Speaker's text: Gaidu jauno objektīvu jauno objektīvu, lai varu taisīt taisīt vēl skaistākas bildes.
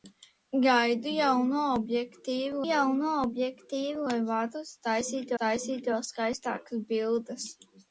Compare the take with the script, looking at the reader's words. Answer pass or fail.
pass